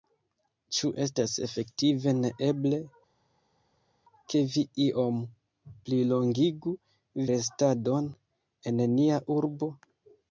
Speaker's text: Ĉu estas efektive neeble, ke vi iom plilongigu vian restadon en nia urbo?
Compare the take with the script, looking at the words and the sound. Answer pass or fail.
fail